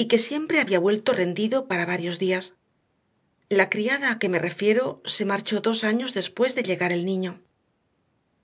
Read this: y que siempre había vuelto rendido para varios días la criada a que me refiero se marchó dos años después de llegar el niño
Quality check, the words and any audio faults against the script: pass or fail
pass